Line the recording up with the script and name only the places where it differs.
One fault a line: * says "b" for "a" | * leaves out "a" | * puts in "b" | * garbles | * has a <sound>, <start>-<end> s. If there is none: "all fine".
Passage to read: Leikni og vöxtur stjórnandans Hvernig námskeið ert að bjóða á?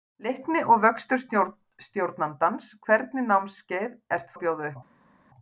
all fine